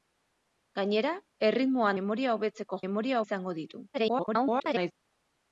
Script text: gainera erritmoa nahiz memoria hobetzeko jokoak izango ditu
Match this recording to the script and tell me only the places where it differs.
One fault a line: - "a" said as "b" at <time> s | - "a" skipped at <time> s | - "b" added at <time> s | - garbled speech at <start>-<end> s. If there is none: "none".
- "nahiz" skipped at 1.9 s
- "jokoak" said as "memoria" at 2.9 s
- garbled speech at 3.9-4.9 s